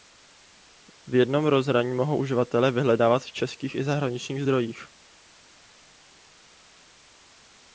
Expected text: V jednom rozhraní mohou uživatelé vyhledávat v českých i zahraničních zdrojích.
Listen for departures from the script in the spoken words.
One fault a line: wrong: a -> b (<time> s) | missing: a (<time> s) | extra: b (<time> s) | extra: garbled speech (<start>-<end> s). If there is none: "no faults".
no faults